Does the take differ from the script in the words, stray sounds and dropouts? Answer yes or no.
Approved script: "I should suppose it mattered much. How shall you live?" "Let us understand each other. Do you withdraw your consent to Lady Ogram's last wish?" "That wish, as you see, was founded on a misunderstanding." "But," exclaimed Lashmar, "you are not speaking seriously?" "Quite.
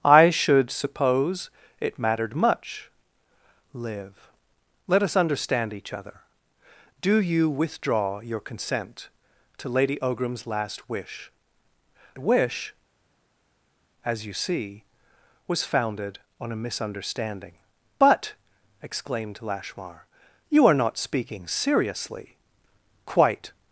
yes